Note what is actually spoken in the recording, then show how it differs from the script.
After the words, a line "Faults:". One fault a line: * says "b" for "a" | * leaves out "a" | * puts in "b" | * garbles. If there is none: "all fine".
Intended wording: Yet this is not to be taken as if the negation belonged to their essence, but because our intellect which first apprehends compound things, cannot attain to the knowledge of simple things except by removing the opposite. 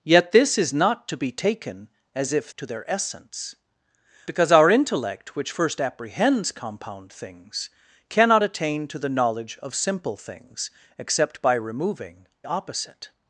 Yet this is not to be taken as if to their essence, because our intellect which first apprehends compound things, cannot attain to the knowledge of simple things except by removing opposite.
Faults:
* leaves out "the negation belonged"
* leaves out "but"
* leaves out "the"